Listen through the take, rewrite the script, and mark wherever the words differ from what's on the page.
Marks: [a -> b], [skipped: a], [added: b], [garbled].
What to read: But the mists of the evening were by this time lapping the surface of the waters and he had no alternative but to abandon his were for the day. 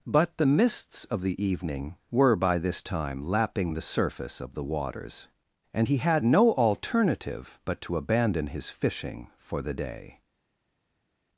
But the mists of the evening were by this time lapping the surface of the waters and he had no alternative but to abandon his [were -> fishing] for the day.